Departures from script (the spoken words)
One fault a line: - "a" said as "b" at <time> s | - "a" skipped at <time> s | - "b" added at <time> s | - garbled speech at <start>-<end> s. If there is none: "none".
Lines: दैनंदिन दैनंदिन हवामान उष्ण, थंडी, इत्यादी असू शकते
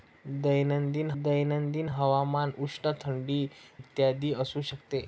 none